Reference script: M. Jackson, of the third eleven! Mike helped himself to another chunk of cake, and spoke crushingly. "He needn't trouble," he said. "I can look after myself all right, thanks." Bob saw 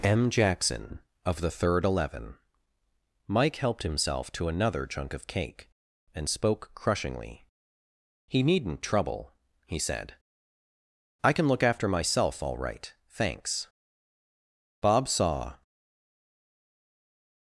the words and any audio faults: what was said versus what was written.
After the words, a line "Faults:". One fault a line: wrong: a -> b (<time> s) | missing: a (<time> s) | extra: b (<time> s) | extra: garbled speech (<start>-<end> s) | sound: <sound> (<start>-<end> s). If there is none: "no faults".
M. Jackson, of the third eleven! Mike helped himself to another chunk of cake, and spoke crushingly. "He needn't trouble," he said. "I can look after myself all right, thanks." Bob saw
Faults:
no faults